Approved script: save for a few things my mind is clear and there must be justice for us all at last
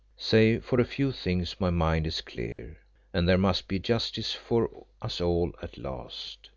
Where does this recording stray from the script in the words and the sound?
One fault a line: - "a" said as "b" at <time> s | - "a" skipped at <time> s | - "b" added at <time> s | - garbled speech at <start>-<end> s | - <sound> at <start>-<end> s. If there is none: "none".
- dropout at 2.5-2.6 s